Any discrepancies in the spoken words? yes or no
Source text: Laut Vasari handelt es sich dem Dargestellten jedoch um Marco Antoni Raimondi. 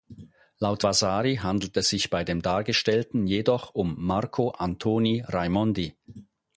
yes